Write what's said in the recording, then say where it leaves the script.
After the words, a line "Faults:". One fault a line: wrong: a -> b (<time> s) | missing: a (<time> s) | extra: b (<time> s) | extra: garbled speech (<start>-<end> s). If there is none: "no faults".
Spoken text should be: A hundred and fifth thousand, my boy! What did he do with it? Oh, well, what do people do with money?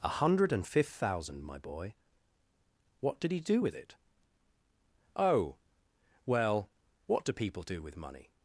A hundred and fifth thousand, my boy! What did he do with it? Oh, well, what do people do with money?
Faults:
no faults